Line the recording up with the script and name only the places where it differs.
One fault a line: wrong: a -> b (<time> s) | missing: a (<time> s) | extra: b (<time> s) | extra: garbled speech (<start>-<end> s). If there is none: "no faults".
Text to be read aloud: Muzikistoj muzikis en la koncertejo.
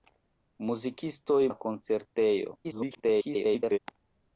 missing: muzikis en (1.4 s)
extra: garbled speech (2.6-3.8 s)